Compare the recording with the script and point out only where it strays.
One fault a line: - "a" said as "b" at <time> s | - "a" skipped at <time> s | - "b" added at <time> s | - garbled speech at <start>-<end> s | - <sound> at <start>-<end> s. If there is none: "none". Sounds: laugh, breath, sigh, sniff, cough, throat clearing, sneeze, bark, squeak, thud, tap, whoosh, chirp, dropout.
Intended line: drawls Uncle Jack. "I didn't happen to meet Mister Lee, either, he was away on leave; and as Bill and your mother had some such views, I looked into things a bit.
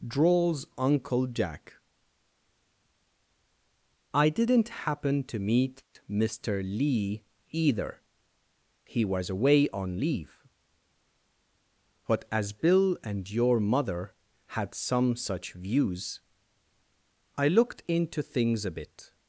- "and" said as "but" at 12.1 s